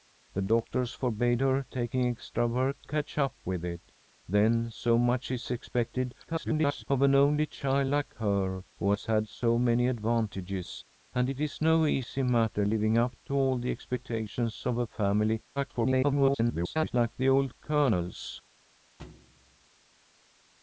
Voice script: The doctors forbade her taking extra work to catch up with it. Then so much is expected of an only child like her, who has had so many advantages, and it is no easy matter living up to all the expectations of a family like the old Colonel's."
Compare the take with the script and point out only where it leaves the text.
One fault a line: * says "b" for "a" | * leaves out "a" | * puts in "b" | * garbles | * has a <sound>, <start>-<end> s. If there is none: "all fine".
* leaves out "to"
* garbles
* garbles
* has a thud, 19.0-19.7 s